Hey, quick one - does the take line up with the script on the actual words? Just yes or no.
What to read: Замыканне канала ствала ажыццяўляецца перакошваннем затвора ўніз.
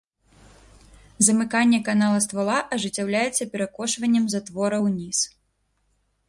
yes